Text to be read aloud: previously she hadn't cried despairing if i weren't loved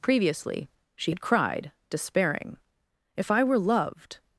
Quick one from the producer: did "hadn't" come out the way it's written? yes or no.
no